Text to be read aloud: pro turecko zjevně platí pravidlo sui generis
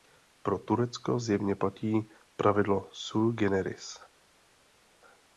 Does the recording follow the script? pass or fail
pass